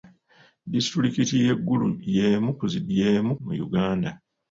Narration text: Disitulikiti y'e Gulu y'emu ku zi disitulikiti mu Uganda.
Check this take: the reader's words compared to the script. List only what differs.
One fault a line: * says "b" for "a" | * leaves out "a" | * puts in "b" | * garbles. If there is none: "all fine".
* says "y'emu" for "disitulikiti"